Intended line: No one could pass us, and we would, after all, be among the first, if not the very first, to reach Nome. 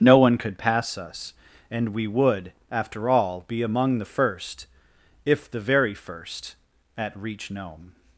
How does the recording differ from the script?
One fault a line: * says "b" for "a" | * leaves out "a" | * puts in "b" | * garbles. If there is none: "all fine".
* leaves out "not"
* says "at" for "to"